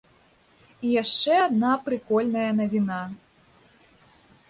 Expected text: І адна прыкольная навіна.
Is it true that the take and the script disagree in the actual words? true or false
true